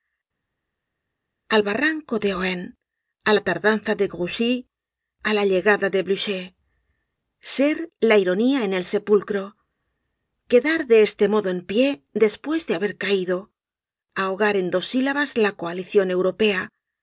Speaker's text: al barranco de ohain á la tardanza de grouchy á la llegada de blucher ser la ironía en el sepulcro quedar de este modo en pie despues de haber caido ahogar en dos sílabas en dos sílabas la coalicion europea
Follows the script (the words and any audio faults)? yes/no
no